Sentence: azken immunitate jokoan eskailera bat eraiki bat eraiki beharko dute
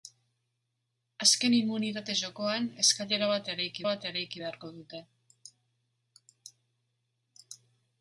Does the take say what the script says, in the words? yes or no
yes